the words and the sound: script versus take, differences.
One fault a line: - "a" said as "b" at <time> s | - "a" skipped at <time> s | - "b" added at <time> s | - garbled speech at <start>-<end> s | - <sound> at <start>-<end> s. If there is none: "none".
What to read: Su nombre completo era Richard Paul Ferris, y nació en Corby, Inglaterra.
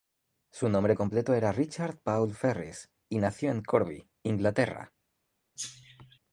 - cough at 5.6-6.2 s